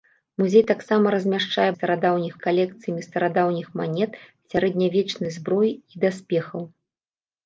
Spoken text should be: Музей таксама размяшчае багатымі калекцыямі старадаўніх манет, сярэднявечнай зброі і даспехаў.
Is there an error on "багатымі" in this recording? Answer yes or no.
yes